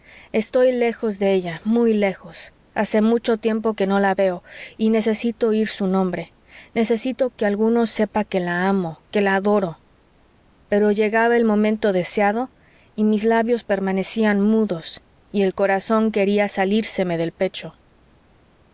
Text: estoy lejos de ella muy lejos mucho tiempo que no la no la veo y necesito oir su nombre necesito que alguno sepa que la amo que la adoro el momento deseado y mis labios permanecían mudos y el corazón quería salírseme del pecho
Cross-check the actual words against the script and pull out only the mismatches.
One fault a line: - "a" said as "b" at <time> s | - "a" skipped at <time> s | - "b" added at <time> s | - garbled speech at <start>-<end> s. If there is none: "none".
- "hace" added at 2.7 s
- "no la" skipped at 4.1 s
- "pero llegaba" added at 10.7 s